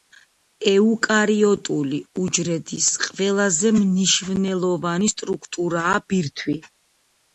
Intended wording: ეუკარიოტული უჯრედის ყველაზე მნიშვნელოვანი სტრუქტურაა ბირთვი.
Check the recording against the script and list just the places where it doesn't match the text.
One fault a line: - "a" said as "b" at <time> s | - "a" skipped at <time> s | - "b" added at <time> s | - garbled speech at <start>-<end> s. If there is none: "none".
none